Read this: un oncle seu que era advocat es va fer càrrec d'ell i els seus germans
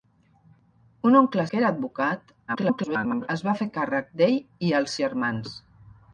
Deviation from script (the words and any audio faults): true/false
true